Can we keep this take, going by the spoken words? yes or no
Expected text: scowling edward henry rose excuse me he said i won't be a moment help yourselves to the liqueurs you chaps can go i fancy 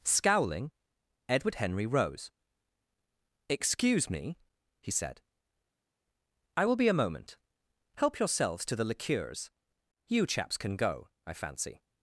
no